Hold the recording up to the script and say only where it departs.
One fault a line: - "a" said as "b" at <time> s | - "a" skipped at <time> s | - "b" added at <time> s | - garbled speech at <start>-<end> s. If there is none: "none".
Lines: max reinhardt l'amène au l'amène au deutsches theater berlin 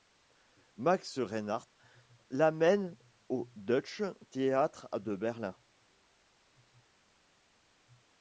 - "l'amène au" skipped at 3.5 s
- "de" added at 5.0 s